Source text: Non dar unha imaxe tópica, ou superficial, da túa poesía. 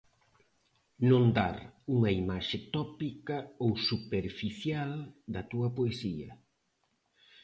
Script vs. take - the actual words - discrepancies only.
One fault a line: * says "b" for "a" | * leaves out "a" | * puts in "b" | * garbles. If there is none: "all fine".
all fine